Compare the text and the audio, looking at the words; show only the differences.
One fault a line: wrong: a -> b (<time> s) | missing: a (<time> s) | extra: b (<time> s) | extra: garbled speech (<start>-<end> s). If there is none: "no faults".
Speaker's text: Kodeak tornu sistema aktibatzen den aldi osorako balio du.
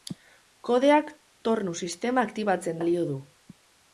missing: den aldi osorako (2.8 s)